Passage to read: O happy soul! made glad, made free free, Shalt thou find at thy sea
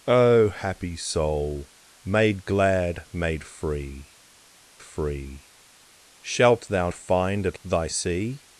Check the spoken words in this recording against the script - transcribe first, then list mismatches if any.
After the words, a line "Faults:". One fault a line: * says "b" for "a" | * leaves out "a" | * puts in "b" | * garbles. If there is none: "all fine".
O happy soul! made glad, made free free, Shalt thou find at thy sea
Faults:
all fine